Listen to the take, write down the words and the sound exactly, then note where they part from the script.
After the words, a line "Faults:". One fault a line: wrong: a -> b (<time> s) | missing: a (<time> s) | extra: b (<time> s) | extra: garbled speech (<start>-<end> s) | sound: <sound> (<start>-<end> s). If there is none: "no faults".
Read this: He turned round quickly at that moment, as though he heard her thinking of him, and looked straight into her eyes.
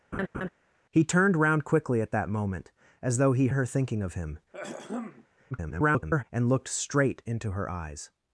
He turned round quickly at that moment, as though he her thinking of him, [garbled] and looked straight into her eyes.
Faults:
sound: laugh (0.1-0.5 s)
missing: heard (3.5 s)
sound: throat clearing (4.5-5.3 s)
extra: garbled speech (5.5-6.2 s)